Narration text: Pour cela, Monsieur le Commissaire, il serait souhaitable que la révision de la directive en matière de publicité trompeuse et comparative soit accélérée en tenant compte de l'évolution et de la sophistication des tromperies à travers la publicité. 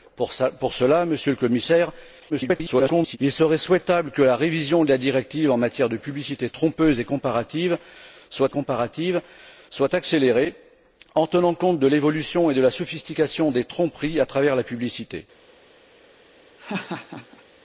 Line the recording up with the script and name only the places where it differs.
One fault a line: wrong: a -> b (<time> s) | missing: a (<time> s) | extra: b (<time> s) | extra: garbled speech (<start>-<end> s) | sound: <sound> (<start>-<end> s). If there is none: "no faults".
extra: garbled speech (2.3-3.2 s)
extra: comparative soit (8.5 s)
sound: laugh (16.6-17.4 s)